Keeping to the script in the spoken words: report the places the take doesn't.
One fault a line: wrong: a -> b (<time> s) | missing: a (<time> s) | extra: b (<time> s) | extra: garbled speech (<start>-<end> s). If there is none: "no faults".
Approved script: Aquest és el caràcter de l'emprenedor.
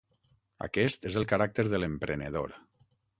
no faults